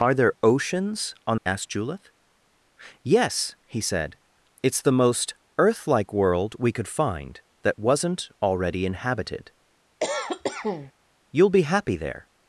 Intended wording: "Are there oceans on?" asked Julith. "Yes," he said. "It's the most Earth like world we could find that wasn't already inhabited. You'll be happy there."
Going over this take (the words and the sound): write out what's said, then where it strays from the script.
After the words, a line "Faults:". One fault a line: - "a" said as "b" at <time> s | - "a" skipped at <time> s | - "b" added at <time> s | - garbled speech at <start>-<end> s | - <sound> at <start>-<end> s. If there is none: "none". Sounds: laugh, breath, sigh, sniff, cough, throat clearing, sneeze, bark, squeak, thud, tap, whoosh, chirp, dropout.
"Are there oceans on?" asked Julith. "Yes," he said. "It's the most Earth like world we could find that wasn't already inhabited. You'll be happy there."
Faults:
- cough at 10.0-10.9 s